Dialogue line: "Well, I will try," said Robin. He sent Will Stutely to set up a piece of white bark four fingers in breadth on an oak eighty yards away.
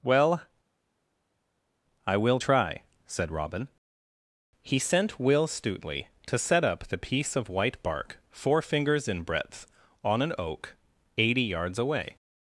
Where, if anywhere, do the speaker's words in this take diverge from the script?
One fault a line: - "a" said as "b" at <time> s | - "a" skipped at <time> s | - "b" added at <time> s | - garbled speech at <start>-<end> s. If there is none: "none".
- "a" said as "the" at 6.9 s